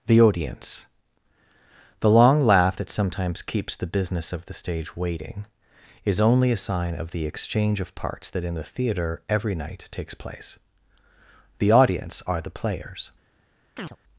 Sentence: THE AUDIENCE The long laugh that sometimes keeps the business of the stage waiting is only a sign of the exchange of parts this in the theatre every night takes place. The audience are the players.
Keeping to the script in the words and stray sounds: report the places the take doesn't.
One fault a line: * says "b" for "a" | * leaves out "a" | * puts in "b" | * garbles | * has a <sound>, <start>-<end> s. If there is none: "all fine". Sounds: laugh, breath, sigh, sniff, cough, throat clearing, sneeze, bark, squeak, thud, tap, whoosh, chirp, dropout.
* says "that" for "this"
* has a chirp, 13.8-14.0 s